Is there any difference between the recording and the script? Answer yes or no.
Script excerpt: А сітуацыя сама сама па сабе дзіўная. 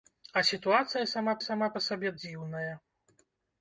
no